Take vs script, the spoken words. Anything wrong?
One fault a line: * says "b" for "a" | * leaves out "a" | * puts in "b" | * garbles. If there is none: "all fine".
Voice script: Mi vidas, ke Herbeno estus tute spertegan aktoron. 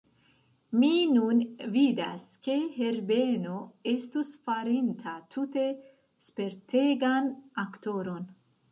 * puts in "nun"
* puts in "farinta"